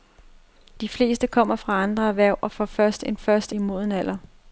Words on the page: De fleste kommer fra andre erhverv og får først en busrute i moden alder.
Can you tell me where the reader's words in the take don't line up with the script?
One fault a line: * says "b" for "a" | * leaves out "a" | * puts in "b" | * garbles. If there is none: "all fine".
* says "først" for "busrute"